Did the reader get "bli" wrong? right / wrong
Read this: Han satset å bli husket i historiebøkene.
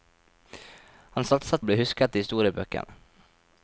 right